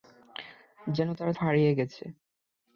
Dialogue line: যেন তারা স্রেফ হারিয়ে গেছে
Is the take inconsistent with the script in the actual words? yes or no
yes